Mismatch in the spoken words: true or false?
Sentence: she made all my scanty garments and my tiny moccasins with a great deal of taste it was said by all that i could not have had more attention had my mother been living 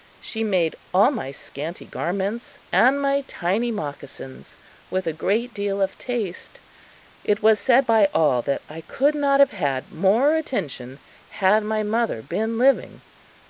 false